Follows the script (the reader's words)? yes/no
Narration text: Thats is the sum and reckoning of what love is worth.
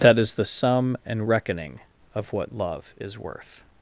no